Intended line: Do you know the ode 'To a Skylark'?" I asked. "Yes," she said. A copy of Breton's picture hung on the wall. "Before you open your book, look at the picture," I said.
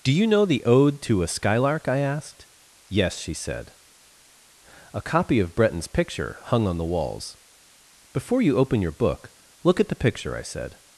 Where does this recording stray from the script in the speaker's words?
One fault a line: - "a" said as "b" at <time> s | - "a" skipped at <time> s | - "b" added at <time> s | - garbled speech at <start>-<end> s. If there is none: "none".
- "wall" said as "walls" at 6.8 s